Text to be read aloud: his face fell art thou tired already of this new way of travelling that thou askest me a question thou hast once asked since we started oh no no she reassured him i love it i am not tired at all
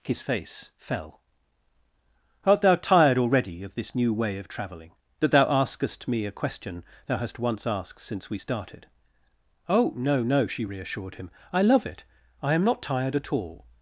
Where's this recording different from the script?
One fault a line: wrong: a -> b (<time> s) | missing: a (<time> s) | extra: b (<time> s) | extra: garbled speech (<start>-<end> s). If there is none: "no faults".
no faults